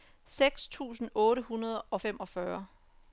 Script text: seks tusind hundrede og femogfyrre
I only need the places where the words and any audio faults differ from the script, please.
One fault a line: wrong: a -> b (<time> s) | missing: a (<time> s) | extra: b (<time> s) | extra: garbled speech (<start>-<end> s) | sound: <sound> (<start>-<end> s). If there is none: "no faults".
extra: otte (1.1 s)